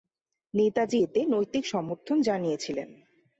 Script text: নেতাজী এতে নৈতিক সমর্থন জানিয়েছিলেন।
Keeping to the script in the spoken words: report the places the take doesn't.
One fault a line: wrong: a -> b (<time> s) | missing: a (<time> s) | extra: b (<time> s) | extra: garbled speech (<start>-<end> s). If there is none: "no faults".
no faults